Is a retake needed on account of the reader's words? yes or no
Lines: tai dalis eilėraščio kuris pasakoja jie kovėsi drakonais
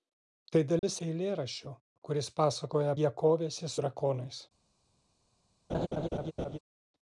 no